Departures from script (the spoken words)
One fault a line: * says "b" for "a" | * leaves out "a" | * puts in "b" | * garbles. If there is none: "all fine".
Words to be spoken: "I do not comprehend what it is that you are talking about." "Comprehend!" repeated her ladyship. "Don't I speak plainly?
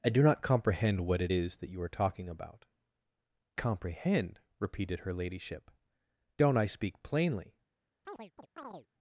all fine